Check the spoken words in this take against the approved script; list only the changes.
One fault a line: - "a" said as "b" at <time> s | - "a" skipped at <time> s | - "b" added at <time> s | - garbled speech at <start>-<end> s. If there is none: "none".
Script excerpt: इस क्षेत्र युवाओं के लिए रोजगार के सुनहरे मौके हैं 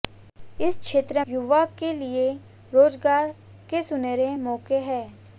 none